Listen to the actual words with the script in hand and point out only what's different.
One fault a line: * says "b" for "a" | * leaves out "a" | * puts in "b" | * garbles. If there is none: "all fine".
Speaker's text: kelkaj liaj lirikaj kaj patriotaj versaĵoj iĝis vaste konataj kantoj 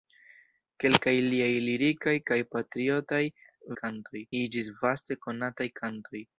* says "kantoj" for "versaĵoj"